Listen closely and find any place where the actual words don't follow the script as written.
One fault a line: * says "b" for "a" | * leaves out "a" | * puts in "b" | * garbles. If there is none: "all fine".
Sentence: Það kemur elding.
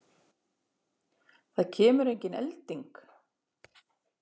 * puts in "engin"